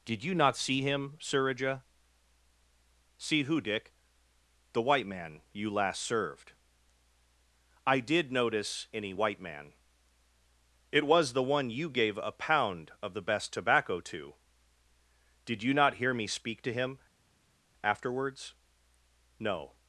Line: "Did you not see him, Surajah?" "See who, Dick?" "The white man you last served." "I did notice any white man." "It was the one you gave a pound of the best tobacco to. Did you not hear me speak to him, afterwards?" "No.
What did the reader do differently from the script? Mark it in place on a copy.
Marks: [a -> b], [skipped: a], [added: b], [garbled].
"Did you not see him, Surajah?" "See who, Dick?" "The white man you last served." "I did notice any white man." "It was the one you gave a pound of the best tobacco to. Did you not hear me speak to him, afterwards?" "No.